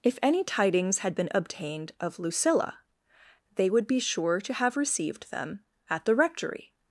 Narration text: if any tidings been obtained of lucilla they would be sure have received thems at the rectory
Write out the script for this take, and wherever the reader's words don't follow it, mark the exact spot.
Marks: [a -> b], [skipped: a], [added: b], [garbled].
if any tidings [added: had] been obtained of lucilla they would be sure [added: to] have received [thems -> them] at the rectory